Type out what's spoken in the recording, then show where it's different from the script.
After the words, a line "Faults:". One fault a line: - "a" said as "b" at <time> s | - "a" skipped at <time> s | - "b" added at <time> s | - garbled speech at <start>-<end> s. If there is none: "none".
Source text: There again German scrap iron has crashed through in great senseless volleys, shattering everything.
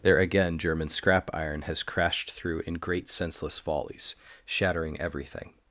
There again German scrap iron has crashed through in great senseless volleys, shattering everything.
Faults:
none